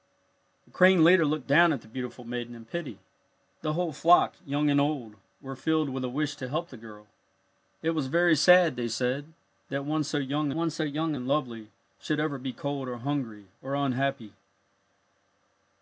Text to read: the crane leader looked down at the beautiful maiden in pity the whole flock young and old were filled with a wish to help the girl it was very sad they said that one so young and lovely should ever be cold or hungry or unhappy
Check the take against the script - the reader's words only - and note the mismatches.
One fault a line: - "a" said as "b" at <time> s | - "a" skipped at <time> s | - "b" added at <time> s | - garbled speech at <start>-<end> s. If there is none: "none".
- "one so young" added at 10.5 s